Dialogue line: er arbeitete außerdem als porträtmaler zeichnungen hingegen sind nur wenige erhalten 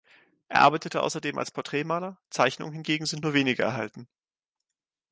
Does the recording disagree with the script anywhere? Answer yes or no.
no